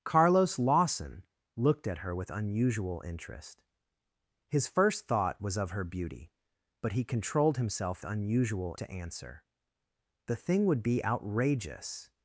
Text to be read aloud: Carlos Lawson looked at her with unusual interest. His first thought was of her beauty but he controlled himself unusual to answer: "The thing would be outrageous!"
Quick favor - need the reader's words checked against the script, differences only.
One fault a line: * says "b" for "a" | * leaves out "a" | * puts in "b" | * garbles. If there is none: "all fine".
all fine